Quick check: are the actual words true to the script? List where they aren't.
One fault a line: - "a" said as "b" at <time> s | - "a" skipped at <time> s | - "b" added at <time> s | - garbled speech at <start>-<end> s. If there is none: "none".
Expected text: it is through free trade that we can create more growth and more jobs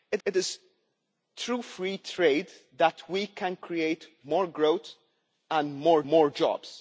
- "it" added at 0.2 s
- "more" added at 6.0 s